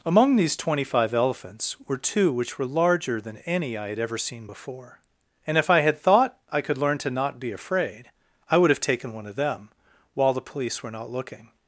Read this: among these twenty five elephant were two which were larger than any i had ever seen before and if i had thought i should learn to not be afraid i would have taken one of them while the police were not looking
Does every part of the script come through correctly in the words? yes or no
no